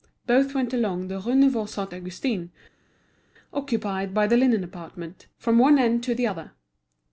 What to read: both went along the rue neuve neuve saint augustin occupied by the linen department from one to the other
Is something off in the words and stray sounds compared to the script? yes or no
yes